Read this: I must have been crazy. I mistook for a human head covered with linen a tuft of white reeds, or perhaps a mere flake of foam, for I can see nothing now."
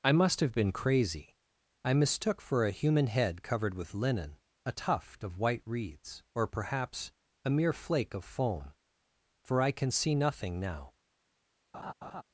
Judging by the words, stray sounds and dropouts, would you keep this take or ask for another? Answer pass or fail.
fail